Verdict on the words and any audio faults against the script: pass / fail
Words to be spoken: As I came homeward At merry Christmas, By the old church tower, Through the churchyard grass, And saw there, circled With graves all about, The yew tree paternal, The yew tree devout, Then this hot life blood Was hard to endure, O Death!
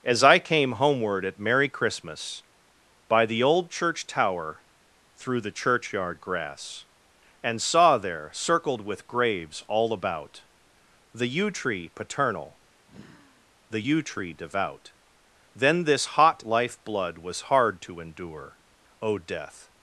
fail